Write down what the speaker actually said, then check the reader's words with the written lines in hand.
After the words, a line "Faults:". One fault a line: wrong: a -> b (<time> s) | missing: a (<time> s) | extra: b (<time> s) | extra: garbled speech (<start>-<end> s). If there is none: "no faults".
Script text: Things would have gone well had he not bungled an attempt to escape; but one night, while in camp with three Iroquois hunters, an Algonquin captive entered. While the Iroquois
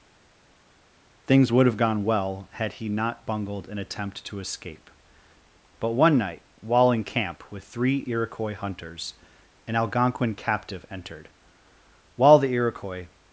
Things would have gone well had he not bungled an attempt to escape; but one night, while in camp with three Iroquois hunters, an Algonquin captive entered. While the Iroquois
Faults:
no faults